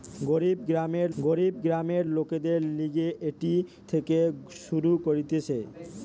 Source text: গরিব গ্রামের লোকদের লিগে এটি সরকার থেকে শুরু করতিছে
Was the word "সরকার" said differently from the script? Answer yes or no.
yes